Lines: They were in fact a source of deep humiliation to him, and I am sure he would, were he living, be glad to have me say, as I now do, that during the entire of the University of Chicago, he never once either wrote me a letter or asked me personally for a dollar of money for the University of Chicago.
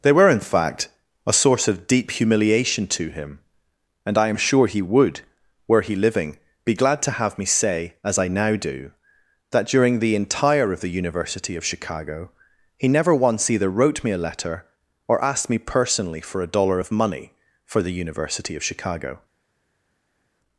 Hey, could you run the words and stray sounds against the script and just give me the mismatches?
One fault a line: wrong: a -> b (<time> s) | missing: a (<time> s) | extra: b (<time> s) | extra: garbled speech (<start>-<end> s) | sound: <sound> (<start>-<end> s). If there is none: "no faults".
no faults